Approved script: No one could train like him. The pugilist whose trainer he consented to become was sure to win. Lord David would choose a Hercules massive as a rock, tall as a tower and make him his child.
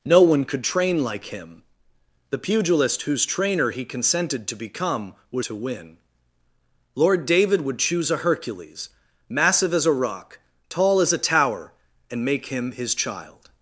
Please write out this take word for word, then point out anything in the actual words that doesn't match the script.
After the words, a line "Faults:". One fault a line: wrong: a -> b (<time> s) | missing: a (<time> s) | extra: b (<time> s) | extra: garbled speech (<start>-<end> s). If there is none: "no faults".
No one could train like him. The pugilist whose trainer he consented to become was to win. Lord David would choose a Hercules massive as a rock, tall as a tower and make him his child.
Faults:
missing: sure (5.5 s)